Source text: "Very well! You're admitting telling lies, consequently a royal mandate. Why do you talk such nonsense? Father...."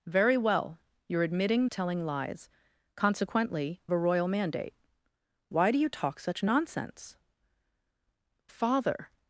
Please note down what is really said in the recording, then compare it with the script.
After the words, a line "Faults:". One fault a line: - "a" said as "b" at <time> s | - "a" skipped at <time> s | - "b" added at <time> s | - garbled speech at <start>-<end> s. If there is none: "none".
"Very well! You're admitting telling lies, consequently a royal mandate. Why do you talk such nonsense? Father...."
Faults:
none